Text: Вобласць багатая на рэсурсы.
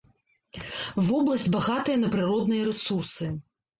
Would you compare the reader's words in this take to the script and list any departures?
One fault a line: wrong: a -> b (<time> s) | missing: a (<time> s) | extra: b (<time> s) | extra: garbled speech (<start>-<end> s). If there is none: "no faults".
extra: прыродныя (2.2 s)